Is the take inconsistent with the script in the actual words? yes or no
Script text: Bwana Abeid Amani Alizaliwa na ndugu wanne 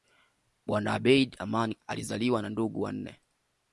no